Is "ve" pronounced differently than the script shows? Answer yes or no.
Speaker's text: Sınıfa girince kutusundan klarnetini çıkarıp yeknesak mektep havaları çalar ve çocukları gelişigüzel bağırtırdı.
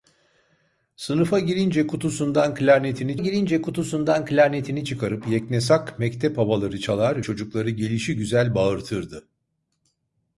yes